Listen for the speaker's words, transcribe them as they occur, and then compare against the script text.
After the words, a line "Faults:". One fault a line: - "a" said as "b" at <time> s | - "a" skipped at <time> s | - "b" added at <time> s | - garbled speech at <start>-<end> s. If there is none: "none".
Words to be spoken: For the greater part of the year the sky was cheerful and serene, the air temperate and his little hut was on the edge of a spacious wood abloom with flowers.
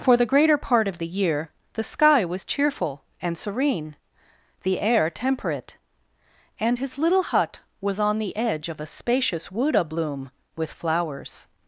For the greater part of the year the sky was cheerful and serene, the air temperate and his little hut was on the edge of a spacious wood abloom with flowers.
Faults:
none